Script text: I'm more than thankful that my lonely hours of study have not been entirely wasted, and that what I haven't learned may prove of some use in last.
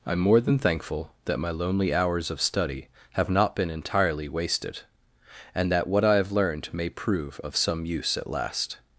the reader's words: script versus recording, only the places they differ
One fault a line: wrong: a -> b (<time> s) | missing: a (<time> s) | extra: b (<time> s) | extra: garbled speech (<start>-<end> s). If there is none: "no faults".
wrong: haven't -> have (6.2 s)
wrong: in -> at (8.2 s)